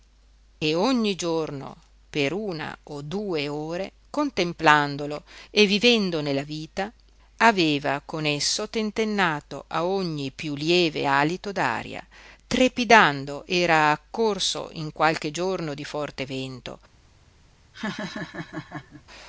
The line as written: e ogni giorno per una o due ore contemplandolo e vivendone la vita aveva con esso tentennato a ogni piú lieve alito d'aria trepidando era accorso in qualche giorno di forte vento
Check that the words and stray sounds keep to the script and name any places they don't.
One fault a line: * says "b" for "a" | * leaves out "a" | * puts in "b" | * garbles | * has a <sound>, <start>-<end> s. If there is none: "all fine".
* has a laugh, 17.7-19.0 s